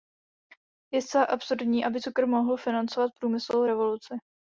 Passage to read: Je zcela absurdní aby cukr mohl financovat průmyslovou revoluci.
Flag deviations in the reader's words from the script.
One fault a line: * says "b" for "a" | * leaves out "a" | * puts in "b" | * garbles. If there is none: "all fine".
all fine